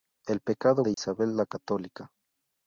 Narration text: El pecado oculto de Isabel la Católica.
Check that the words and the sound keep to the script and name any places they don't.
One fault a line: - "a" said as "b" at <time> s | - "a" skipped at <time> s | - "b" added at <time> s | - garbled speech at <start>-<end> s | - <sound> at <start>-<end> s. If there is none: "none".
- "oculto" skipped at 0.8 s
- dropout at 0.9-1.0 s